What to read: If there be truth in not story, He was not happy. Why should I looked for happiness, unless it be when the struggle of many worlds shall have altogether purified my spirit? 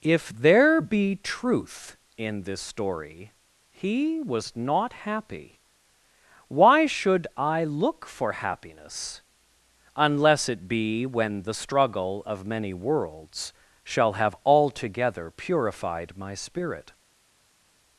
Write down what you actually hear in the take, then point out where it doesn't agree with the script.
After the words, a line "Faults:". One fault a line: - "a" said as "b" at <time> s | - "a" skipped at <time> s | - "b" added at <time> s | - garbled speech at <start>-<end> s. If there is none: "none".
If there be truth in this story, He was not happy. Why should I look for happiness, unless it be when the struggle of many worlds shall have altogether purified my spirit?
Faults:
- "not" said as "this" at 2.4 s
- "looked" said as "look" at 7.7 s